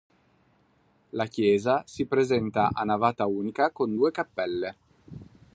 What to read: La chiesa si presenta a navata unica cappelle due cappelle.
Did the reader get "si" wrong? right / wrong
right